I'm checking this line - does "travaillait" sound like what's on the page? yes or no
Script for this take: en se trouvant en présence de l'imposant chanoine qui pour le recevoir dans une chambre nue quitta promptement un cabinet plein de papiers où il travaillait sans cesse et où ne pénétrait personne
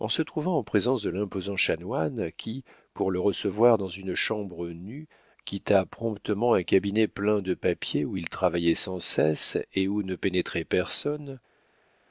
yes